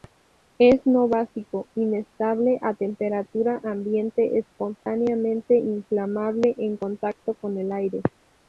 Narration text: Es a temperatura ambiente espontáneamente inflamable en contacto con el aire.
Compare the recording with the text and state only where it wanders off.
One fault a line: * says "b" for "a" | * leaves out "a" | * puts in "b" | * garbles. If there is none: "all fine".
* puts in "no básico inestable"